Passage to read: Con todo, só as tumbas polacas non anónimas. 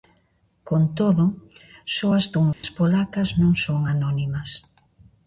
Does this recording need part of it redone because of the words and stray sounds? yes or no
yes